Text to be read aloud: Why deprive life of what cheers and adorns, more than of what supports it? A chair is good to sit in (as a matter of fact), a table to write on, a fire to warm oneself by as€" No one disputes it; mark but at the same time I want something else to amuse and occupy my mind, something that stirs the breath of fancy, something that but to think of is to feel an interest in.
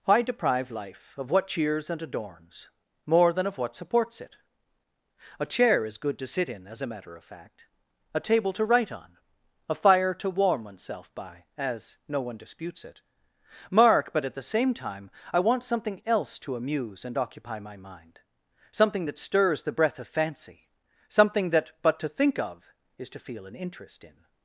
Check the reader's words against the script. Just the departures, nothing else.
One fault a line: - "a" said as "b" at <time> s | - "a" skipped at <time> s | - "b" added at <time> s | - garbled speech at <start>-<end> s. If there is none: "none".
none